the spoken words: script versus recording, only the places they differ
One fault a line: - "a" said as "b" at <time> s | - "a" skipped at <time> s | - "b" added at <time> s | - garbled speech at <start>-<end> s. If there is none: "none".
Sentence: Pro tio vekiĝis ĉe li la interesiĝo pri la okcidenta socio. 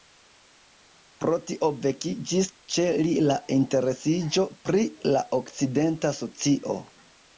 none